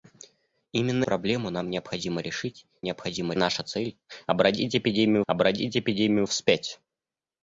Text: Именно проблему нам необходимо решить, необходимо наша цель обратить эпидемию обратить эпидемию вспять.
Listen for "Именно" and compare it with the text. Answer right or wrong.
right